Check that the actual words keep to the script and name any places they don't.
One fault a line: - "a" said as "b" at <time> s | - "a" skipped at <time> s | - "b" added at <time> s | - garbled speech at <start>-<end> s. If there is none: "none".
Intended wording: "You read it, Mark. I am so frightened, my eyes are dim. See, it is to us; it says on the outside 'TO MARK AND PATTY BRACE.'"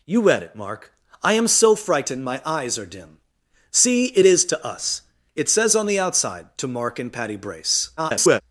- garbled speech at 8.0-8.4 s